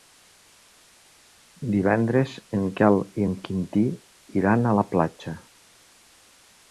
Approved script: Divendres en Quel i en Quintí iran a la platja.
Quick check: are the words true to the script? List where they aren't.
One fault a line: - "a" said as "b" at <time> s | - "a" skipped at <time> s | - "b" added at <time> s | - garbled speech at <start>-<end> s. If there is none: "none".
none